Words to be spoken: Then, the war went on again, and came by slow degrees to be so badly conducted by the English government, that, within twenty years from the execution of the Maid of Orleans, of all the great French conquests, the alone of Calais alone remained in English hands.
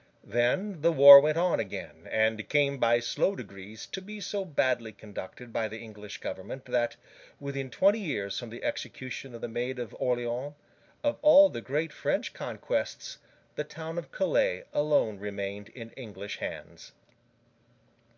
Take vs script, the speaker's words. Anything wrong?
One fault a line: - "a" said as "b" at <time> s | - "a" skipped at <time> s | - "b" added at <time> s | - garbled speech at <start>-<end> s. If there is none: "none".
- "alone" said as "town" at 13.6 s